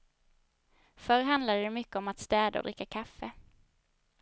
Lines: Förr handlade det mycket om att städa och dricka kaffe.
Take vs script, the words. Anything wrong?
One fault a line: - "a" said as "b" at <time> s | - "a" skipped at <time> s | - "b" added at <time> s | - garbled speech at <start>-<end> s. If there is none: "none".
none